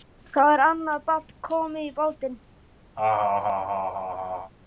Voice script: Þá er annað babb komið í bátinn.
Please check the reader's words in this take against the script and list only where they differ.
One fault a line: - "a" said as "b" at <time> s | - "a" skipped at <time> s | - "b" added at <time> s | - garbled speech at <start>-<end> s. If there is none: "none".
none